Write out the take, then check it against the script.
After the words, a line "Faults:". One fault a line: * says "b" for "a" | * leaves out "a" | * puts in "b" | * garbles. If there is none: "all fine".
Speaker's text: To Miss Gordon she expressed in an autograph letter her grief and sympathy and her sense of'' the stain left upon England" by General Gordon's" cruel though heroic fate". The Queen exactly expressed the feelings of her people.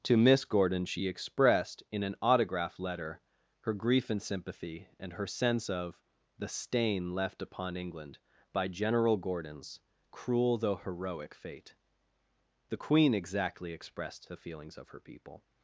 To Miss Gordon she expressed in an autograph letter her grief and sympathy and her sense of'' the stain left upon England" by General Gordon's" cruel though heroic fate". The Queen exactly expressed the feelings of her people.
Faults:
all fine